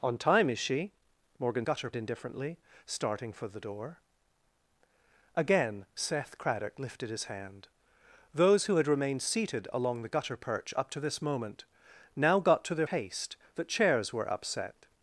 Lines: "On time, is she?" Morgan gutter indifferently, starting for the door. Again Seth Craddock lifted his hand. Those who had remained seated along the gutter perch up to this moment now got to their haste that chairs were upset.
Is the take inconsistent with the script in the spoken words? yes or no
no